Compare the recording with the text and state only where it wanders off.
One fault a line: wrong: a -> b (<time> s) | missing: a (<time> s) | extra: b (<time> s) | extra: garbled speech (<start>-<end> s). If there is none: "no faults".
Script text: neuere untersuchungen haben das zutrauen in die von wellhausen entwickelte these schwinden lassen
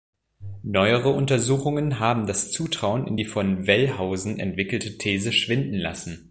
no faults